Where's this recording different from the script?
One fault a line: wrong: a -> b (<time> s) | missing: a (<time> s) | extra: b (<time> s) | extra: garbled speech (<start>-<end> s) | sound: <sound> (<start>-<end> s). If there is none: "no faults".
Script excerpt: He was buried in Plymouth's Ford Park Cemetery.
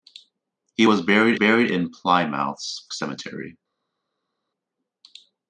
extra: buried (1.3 s)
missing: Ford Park (2.9 s)